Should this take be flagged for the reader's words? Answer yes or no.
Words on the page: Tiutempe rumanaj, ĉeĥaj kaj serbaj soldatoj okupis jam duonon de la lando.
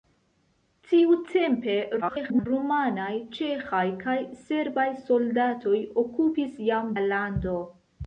yes